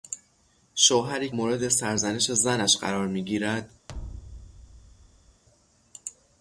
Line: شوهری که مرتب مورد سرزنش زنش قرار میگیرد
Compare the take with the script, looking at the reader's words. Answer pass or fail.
fail